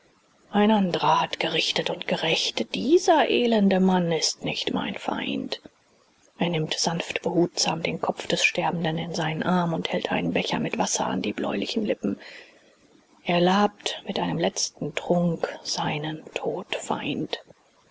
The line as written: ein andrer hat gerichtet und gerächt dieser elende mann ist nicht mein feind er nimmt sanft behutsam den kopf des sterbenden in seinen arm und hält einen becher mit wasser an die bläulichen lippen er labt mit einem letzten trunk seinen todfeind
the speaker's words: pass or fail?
pass